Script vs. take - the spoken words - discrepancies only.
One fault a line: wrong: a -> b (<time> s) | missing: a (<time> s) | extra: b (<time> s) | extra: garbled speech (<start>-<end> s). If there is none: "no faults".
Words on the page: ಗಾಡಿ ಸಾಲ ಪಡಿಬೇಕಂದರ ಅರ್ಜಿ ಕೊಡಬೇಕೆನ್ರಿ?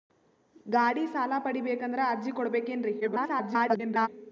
extra: garbled speech (3.0-4.1 s)